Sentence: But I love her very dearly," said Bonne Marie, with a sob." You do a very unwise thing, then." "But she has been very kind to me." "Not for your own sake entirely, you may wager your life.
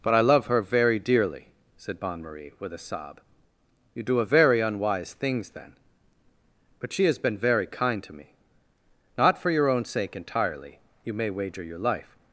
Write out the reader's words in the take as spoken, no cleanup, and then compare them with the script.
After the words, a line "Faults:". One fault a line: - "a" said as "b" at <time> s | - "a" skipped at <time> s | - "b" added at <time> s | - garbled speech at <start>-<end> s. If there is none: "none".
But I love her very dearly," said Bonne Marie, with a sob." You do a very unwise things, then." "But she has been very kind to me." "Not for your own sake entirely, you may wager your life.
Faults:
- "thing" said as "things" at 5.1 s